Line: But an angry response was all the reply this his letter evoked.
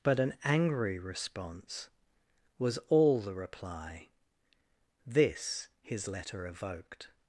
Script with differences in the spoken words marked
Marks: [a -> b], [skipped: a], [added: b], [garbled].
But an angry response was all the reply this his letter evoked.